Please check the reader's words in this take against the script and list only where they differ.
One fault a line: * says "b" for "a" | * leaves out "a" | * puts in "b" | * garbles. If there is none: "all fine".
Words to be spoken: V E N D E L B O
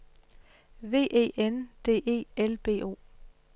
all fine